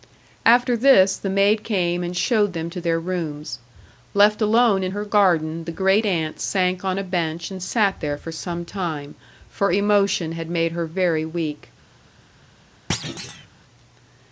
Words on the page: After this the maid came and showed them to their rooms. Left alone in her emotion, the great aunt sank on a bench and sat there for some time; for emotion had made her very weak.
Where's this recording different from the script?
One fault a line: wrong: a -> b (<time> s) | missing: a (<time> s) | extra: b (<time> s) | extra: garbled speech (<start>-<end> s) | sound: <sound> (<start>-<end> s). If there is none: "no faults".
wrong: emotion -> garden (5.0 s)
sound: thud (12.9-13.5 s)